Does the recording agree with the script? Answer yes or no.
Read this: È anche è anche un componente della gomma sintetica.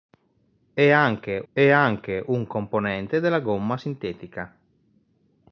yes